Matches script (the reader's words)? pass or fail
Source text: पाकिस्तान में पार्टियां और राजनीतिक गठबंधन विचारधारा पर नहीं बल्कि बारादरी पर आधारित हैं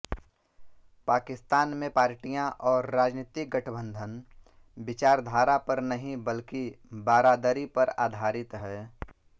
pass